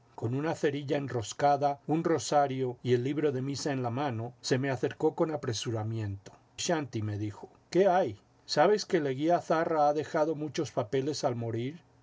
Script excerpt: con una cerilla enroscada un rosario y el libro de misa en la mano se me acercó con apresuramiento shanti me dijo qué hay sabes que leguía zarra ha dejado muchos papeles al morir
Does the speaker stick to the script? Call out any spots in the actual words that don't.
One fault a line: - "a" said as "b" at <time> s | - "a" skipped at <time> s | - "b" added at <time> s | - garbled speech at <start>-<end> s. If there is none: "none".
none